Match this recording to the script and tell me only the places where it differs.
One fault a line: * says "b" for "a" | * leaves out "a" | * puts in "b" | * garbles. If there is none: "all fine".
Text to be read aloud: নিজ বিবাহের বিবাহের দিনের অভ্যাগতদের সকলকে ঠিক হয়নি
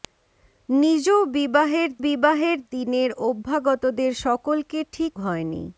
all fine